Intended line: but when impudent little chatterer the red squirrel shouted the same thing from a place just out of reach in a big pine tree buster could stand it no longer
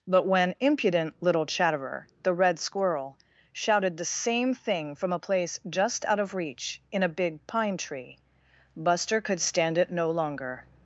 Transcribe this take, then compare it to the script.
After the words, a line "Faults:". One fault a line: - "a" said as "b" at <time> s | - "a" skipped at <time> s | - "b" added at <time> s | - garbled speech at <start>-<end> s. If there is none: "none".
but when impudent little chatterer the red squirrel shouted the same thing from a place just out of reach in a big pine tree buster could stand it no longer
Faults:
none